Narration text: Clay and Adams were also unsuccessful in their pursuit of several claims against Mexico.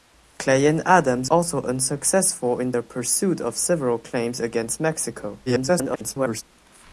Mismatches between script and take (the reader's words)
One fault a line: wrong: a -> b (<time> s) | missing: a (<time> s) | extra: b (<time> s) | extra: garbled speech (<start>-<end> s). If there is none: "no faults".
missing: were (1.3 s)
extra: garbled speech (5.5-6.4 s)